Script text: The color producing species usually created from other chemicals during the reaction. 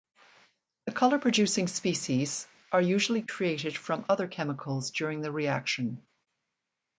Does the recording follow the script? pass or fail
fail